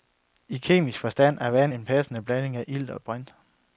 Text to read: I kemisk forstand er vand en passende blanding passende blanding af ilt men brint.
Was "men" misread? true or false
true